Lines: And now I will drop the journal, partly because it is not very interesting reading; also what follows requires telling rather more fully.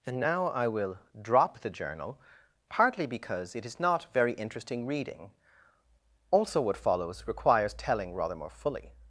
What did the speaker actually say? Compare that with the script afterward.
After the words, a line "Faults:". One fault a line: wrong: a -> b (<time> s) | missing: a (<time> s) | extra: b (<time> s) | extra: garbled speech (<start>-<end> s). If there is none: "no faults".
And now I will drop the journal, partly because it is not very interesting reading; also what follows requires telling rather more fully.
Faults:
no faults